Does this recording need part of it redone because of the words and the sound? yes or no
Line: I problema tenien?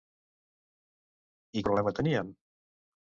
no